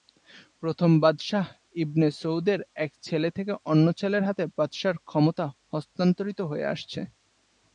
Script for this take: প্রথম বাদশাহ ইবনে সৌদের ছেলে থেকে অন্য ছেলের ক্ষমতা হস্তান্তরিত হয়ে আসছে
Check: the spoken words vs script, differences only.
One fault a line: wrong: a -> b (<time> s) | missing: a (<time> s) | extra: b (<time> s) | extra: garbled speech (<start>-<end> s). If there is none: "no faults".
extra: এক (2.8 s)
extra: হাতে বাদশাহর (4.2 s)